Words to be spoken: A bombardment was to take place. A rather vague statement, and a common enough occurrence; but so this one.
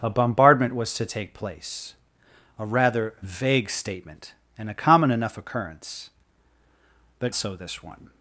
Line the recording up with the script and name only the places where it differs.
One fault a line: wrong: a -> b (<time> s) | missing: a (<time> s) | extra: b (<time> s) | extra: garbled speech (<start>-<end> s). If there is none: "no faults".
no faults